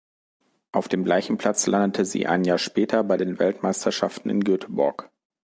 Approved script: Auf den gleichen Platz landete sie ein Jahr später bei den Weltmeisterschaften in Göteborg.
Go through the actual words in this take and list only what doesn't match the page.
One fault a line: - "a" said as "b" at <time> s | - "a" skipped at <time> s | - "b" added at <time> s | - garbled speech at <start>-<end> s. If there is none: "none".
- "den" said as "dem" at 0.9 s